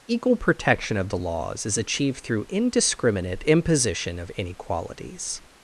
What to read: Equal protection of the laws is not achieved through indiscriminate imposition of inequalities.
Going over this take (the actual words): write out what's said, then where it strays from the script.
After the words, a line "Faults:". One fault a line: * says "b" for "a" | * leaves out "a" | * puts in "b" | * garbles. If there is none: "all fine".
Equal protection of the laws is achieved through indiscriminate imposition of inequalities.
Faults:
* leaves out "not"